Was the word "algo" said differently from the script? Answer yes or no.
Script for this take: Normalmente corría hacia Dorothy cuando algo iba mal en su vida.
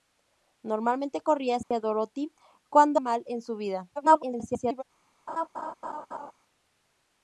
yes